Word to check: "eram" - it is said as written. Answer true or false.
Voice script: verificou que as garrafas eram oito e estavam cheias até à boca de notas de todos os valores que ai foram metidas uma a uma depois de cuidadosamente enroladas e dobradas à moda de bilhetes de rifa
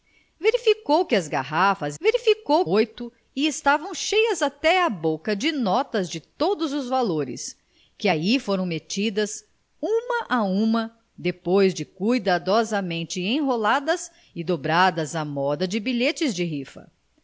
false